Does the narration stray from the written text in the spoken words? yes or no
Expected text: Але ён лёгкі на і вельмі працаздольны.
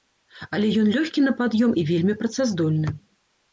yes